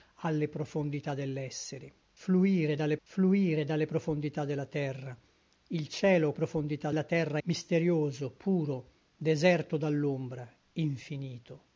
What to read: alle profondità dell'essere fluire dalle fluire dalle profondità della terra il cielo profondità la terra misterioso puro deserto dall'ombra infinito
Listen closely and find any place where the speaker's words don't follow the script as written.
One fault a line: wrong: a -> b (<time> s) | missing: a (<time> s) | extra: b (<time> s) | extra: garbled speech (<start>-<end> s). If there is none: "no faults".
no faults